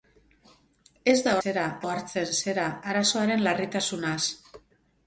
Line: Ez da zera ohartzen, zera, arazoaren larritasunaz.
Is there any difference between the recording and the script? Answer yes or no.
no